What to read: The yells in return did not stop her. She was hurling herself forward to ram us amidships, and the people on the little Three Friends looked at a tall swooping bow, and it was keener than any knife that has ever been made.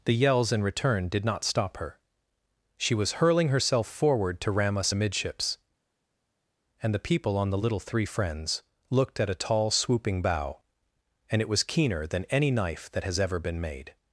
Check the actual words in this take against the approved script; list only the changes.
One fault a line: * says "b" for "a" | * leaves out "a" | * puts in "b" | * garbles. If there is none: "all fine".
all fine